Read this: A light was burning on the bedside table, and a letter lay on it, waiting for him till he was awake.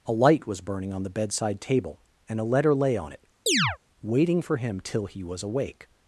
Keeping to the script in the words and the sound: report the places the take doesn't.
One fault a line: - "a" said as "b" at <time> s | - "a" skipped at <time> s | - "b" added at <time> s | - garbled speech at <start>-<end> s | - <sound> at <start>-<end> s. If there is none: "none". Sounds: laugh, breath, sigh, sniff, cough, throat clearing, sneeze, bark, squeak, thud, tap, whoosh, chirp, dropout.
- chirp at 3.5-3.8 s